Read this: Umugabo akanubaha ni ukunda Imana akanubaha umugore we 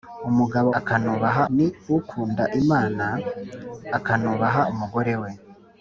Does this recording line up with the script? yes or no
yes